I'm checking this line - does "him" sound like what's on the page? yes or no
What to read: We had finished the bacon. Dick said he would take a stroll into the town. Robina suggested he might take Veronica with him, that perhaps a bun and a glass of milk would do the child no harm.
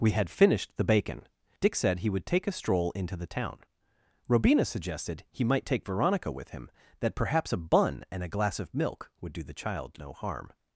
yes